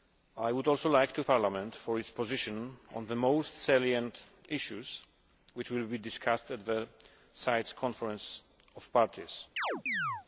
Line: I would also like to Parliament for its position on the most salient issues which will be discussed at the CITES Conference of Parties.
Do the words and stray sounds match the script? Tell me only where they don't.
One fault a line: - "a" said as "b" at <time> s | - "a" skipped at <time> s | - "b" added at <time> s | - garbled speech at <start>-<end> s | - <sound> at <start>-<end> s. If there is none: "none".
- chirp at 9.6-10.3 s